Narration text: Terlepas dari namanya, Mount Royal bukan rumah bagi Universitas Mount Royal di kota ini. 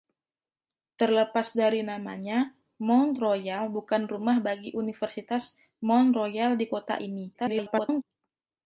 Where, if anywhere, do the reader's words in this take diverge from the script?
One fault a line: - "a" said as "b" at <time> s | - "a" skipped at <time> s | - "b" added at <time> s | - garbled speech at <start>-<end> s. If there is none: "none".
- garbled speech at 7.3-8.0 s